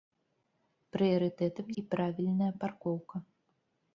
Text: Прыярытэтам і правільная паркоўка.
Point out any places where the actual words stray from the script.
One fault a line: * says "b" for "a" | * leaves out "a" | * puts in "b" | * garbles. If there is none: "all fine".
all fine